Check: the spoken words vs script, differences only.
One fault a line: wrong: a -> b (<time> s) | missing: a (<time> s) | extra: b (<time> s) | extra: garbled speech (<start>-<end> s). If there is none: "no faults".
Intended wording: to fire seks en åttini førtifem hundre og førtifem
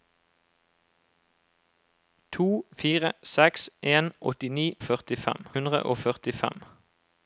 no faults